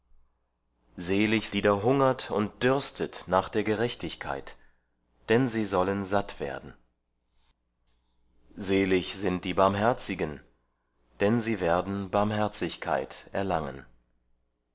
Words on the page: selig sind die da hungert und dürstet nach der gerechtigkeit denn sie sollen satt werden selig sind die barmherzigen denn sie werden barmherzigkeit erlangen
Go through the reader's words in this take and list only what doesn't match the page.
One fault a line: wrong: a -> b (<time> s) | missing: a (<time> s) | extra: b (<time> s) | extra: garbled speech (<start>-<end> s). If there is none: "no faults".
missing: sind (1.5 s)